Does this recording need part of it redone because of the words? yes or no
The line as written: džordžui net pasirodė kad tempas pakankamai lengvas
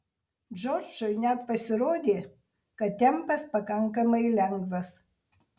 no